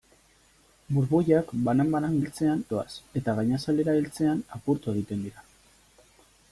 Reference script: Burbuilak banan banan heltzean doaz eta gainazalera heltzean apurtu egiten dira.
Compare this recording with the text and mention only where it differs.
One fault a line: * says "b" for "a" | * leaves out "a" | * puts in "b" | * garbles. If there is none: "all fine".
all fine